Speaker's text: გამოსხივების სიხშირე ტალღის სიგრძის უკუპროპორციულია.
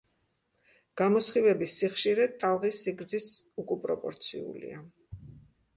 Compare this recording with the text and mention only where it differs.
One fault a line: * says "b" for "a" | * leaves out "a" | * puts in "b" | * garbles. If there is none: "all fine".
all fine